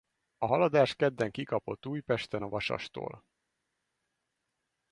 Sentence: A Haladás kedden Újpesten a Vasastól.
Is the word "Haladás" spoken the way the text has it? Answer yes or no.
yes